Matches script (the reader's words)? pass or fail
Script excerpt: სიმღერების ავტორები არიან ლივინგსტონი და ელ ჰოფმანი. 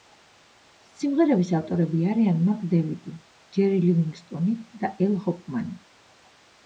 fail